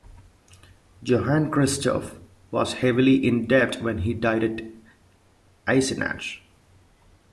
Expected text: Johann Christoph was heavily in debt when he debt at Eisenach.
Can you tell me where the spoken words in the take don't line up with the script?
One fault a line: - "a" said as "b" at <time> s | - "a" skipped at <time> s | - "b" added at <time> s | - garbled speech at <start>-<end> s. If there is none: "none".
- "debt" said as "died" at 4.1 s